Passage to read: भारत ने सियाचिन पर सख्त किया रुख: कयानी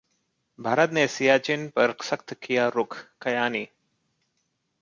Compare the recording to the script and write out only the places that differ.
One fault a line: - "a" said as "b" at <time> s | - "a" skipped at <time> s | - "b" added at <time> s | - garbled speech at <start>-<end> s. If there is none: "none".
none